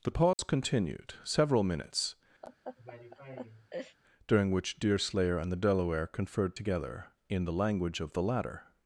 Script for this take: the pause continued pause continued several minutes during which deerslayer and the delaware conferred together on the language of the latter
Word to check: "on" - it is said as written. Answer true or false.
false